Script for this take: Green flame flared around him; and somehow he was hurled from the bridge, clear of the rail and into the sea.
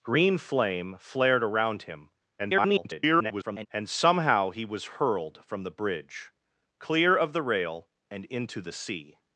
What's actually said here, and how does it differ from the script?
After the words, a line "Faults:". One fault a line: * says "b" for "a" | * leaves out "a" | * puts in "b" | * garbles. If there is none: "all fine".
Green flame flared around him; [garbled] and somehow he was hurled from the bridge, clear of the rail and into the sea.
Faults:
* garbles